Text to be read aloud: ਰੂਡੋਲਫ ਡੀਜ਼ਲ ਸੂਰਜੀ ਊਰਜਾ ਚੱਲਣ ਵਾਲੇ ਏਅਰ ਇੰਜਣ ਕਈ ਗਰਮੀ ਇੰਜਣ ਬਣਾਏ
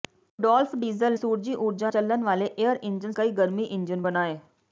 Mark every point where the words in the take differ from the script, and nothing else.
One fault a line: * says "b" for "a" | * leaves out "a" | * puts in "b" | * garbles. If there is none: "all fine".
all fine